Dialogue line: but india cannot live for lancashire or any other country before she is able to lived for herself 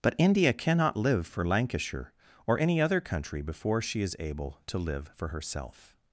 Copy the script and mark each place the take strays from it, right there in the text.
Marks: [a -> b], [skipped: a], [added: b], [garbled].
but india cannot live for lancashire or any other country before she is able to [lived -> live] for herself